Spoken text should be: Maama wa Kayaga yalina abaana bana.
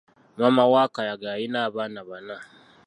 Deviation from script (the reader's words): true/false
false